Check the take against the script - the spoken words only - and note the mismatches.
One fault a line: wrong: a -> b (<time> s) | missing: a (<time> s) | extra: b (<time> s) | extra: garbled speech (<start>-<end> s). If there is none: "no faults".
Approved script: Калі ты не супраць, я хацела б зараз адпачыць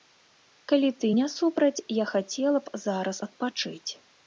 no faults